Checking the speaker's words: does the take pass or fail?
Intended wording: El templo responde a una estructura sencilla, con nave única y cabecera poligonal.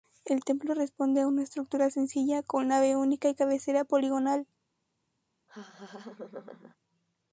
pass